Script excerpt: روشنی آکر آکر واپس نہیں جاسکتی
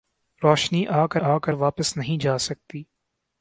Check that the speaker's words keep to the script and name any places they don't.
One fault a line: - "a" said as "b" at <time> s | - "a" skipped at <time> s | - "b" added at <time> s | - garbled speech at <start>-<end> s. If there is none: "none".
none